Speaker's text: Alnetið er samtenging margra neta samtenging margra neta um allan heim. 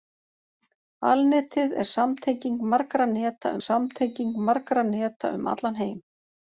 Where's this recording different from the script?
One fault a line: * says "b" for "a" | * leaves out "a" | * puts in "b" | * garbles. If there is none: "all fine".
all fine